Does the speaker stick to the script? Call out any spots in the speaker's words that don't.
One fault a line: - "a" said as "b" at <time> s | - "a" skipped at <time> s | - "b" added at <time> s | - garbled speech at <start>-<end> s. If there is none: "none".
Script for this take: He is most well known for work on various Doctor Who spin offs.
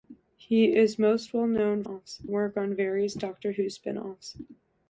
- "for" said as "offs" at 1.8 s